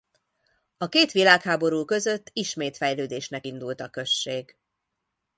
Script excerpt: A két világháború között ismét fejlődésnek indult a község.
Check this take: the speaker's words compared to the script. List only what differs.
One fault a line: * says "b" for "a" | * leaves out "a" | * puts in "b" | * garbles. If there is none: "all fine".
all fine